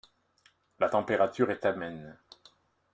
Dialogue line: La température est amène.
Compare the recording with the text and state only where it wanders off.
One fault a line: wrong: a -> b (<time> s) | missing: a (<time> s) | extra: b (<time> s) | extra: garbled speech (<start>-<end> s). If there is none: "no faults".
no faults